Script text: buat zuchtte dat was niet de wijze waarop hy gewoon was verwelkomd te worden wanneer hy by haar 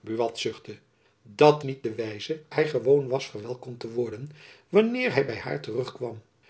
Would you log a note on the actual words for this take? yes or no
yes